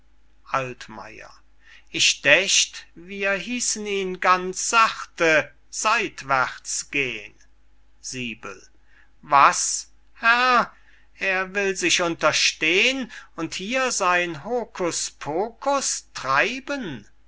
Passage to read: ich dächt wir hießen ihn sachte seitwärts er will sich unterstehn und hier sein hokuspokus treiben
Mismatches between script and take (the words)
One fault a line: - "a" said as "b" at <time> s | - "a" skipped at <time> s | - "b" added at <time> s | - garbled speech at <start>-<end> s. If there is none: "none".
- "ganz" added at 4.2 s
- "gehn was herr" added at 6.9 s